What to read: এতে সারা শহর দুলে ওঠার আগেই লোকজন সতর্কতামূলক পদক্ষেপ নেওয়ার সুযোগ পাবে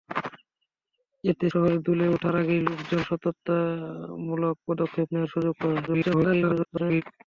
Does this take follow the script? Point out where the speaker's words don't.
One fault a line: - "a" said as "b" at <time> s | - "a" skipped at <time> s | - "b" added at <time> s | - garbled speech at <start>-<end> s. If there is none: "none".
- "সারা" skipped at 1.5 s
- garbled speech at 5.9-7.0 s